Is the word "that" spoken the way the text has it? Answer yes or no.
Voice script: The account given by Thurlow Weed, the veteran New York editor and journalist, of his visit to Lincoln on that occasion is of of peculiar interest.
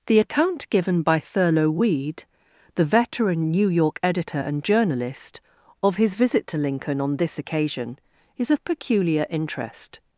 no